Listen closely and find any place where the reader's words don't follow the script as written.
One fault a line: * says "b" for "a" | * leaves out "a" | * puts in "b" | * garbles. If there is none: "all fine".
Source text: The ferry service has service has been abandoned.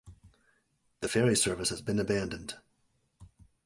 * leaves out "service has"